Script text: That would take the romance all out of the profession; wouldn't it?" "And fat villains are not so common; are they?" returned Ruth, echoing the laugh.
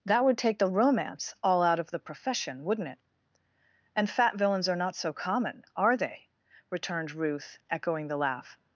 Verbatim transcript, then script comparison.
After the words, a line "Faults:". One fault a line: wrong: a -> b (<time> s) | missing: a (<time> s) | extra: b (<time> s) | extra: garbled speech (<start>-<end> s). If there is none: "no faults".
That would take the romance all out of the profession; wouldn't it?" "And fat villains are not so common; are they?" returned Ruth, echoing the laugh.
Faults:
no faults